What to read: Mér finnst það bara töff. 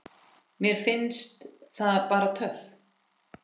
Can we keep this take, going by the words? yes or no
yes